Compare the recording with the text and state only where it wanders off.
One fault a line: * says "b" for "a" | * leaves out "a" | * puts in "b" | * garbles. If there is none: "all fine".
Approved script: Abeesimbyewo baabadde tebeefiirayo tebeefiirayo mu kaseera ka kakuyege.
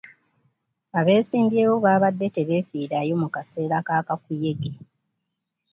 * leaves out "tebeefiirayo"